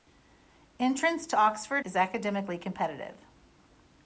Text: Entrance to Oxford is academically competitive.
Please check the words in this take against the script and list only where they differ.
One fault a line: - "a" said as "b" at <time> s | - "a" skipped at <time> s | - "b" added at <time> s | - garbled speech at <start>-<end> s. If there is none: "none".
none